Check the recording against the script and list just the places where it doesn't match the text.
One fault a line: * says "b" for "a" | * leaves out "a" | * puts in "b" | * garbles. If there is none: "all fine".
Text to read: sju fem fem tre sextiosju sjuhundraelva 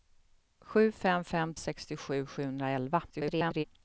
* leaves out "tre"
* garbles